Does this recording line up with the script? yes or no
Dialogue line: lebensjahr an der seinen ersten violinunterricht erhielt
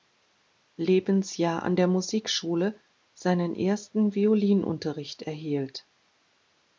no